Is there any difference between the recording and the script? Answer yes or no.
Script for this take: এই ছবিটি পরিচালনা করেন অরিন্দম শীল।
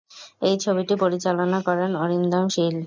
no